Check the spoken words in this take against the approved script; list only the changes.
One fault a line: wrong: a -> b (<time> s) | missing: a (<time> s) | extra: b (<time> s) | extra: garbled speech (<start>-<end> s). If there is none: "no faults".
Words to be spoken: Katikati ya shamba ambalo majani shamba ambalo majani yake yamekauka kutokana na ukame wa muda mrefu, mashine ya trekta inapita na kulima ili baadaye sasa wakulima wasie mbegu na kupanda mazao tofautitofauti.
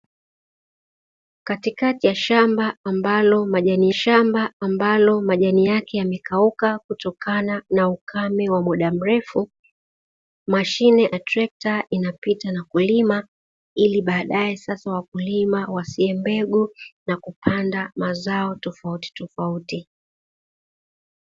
no faults